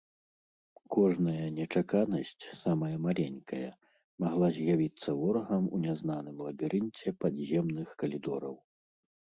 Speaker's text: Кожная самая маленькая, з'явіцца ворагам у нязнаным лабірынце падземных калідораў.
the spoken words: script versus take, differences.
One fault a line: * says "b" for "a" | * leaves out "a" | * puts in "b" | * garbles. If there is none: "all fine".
* puts in "нечаканасць"
* puts in "магла"